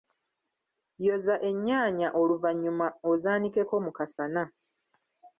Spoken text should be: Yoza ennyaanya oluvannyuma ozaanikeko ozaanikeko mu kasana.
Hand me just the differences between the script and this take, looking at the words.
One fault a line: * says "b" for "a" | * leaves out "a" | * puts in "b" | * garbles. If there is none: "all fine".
* leaves out "ozaanikeko"